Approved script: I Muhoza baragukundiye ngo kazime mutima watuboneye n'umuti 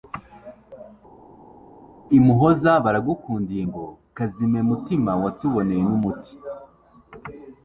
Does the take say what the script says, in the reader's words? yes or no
yes